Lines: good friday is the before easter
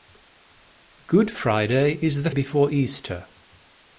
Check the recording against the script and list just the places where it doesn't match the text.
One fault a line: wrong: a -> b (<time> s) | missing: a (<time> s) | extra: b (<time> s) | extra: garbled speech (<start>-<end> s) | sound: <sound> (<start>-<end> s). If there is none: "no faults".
no faults